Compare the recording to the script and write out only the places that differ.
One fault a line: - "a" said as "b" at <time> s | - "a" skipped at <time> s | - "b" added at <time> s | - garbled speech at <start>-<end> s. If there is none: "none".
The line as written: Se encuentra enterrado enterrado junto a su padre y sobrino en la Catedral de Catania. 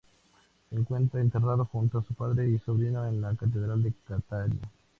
- "enterrado" skipped at 1.7 s